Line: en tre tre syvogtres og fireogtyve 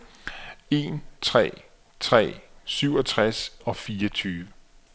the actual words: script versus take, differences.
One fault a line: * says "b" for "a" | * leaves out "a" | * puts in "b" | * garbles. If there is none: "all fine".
all fine